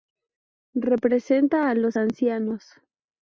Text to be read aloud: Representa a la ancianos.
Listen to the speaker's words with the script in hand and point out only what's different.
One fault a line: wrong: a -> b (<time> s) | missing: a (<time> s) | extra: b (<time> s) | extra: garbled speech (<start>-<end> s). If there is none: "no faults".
wrong: la -> los (1.8 s)